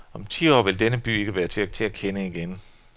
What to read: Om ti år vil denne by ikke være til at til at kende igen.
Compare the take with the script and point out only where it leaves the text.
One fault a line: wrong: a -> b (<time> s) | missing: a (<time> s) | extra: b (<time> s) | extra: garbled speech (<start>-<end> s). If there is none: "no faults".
no faults